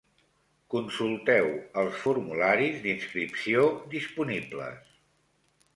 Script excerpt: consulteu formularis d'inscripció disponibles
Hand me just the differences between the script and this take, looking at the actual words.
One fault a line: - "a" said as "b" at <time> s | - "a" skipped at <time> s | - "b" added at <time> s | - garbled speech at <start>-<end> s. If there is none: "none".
- "els" added at 1.8 s